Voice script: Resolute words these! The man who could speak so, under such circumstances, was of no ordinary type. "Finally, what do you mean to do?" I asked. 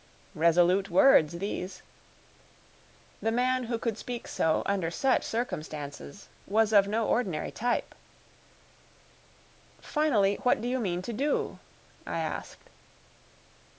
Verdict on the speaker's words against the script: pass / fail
pass